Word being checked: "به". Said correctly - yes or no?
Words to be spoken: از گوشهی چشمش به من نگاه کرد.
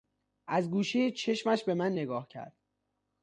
yes